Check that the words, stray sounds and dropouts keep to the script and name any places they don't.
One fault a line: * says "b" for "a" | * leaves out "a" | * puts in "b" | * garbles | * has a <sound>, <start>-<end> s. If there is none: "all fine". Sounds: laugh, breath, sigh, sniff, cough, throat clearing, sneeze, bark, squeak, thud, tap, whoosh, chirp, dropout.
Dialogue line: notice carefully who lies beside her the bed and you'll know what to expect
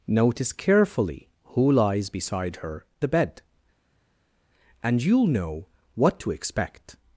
all fine